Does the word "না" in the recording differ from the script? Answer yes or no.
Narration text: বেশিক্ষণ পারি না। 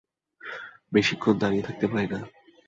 no